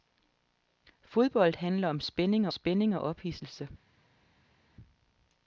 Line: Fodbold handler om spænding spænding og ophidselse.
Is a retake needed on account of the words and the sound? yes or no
no